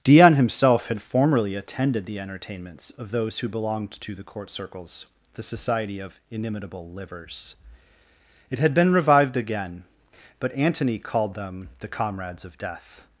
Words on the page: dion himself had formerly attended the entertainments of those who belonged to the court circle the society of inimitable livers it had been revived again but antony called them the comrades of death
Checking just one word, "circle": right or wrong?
wrong